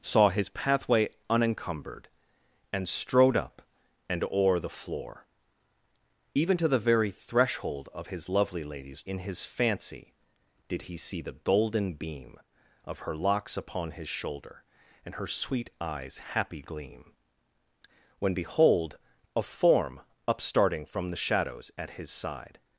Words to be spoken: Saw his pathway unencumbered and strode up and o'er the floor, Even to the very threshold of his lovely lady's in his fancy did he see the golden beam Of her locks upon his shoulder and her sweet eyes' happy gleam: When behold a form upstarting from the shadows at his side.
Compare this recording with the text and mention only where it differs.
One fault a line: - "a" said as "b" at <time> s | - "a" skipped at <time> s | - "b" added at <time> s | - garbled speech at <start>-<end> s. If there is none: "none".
none